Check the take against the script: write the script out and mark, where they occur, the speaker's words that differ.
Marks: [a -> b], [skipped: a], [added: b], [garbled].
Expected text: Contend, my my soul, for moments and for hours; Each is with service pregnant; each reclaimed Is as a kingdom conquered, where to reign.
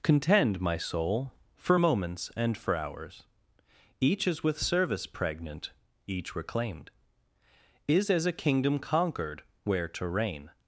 Contend, my [skipped: my] soul, for moments and for hours; Each is with service pregnant; each reclaimed Is as a kingdom conquered, where to reign.